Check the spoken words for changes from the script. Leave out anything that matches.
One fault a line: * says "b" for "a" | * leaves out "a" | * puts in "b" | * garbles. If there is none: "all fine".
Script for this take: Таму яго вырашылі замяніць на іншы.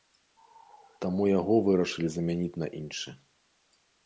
all fine